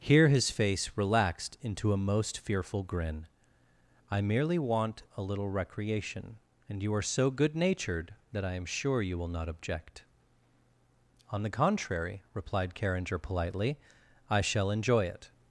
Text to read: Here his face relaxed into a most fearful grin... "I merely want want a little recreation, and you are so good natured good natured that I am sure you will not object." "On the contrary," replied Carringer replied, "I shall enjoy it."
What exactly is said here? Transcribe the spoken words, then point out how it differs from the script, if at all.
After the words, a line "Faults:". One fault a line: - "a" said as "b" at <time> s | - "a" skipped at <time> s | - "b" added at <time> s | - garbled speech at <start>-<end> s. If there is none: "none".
Here his face relaxed into a most fearful grin... "I merely want a little recreation, and you are so good natured that I am sure you will not object." "On the contrary," replied Carringer politely, "I shall enjoy it."
Faults:
- "want" skipped at 5.0 s
- "good natured" skipped at 8.2 s
- "replied" said as "politely" at 13.2 s